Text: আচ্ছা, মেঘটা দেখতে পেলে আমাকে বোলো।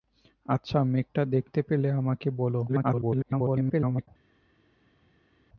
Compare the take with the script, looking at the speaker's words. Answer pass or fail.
fail